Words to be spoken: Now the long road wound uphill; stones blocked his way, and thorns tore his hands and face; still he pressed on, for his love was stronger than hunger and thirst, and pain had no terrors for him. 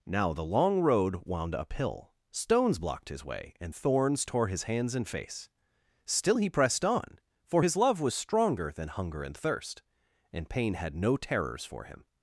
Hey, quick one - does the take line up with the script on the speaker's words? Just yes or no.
yes